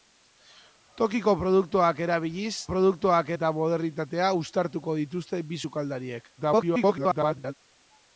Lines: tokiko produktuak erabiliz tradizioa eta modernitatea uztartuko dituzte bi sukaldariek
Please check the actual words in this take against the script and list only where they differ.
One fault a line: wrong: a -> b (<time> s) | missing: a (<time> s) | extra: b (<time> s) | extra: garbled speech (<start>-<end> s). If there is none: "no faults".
wrong: tradizioa -> produktuak (2.7 s)
extra: garbled speech (6.4-7.5 s)